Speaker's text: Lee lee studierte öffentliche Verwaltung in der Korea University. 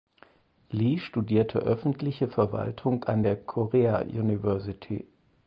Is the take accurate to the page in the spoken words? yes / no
no